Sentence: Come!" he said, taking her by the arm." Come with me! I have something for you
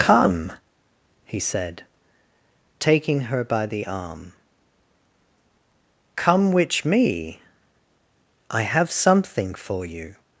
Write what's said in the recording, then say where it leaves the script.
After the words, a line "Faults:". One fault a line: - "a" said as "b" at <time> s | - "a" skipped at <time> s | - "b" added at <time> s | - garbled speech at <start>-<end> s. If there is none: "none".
Come!" he said, taking her by the arm." Come which me! I have something for you
Faults:
- "with" said as "which" at 6.5 s